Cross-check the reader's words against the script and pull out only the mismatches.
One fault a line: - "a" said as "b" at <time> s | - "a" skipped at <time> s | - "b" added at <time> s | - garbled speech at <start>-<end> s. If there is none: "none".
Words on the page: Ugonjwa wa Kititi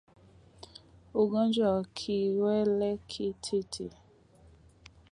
- "kiwele" added at 2.0 s